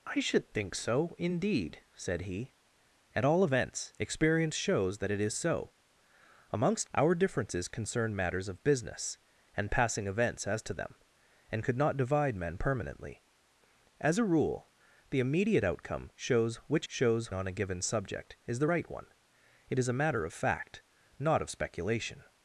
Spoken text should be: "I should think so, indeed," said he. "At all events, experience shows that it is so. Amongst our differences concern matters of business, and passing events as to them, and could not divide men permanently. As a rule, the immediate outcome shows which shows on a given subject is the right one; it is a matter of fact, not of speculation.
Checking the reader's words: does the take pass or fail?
pass